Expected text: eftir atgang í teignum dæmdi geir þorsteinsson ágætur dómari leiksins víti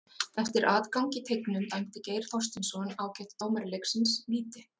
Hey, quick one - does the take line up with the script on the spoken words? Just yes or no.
yes